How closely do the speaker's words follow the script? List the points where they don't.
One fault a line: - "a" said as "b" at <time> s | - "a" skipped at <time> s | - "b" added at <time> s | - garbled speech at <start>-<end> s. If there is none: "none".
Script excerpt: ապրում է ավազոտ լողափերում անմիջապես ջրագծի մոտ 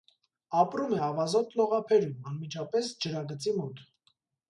none